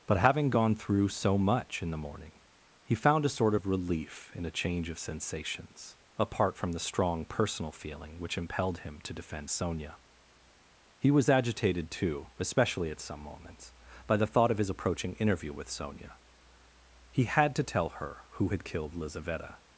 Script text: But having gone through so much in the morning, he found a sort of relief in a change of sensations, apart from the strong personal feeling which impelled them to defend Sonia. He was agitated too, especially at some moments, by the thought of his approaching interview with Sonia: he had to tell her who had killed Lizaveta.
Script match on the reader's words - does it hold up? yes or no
no